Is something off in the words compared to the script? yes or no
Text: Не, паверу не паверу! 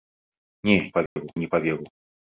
no